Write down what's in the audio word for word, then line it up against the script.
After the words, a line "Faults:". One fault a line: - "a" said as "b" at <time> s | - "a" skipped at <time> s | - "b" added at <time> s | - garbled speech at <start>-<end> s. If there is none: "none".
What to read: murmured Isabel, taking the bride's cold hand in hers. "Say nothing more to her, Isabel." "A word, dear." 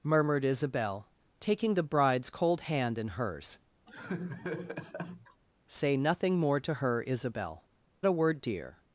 murmured Isabel, taking the bride's cold hand in hers. "Say nothing more to her, Isabel." "A word, dear."
Faults:
none